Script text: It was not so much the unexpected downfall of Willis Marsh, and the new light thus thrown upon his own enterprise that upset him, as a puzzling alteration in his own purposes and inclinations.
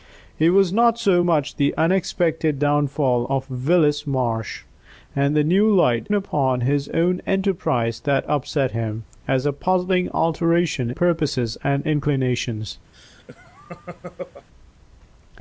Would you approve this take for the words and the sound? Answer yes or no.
no